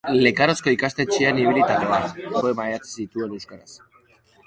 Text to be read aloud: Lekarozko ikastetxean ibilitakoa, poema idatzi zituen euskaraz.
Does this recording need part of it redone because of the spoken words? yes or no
no